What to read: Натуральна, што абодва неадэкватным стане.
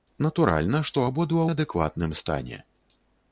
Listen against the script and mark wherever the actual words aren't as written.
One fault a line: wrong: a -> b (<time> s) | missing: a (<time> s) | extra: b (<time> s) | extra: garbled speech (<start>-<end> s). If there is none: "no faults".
no faults